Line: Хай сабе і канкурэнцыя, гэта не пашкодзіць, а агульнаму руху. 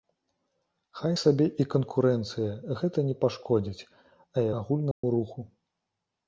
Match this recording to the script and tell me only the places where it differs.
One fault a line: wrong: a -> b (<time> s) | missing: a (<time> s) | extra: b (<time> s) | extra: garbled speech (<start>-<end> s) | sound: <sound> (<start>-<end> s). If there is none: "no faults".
sound: dropout (4.9-5.0 s)